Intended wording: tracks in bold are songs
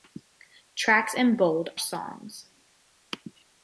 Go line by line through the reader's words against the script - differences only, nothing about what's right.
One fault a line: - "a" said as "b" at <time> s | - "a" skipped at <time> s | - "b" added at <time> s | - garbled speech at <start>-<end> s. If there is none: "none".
- "are" skipped at 1.7 s